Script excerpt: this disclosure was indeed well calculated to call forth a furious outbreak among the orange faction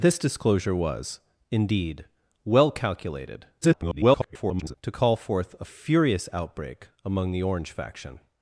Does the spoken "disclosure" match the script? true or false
true